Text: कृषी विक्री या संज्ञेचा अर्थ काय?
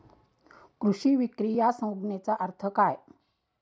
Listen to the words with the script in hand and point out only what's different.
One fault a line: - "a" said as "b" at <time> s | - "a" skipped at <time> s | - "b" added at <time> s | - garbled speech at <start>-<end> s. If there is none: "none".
none